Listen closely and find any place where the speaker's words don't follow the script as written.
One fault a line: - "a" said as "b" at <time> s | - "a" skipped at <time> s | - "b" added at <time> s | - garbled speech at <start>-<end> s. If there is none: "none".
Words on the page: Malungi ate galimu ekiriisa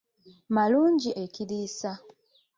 - "ate galimu" skipped at 1.1 s